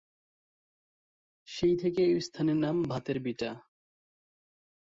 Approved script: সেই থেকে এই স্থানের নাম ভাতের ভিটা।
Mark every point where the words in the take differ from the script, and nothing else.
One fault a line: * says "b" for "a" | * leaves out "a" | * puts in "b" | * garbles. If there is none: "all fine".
all fine